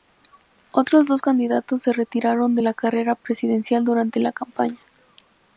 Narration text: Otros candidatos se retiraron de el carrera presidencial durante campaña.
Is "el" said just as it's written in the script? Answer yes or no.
no